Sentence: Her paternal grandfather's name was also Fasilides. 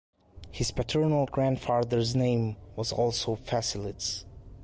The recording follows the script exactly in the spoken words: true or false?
false